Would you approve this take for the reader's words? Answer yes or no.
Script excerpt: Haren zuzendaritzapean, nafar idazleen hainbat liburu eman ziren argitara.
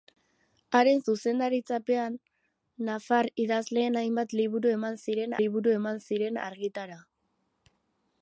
no